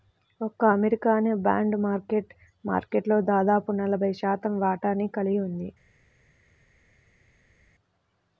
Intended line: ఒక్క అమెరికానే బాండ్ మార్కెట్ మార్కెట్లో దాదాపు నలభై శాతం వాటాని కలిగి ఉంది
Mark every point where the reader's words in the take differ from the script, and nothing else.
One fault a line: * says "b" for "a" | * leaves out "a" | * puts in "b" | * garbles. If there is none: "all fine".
all fine